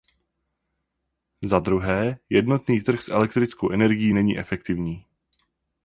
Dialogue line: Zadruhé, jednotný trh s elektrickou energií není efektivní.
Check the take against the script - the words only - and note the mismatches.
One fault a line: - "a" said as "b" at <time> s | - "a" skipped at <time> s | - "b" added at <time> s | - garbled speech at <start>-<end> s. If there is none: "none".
none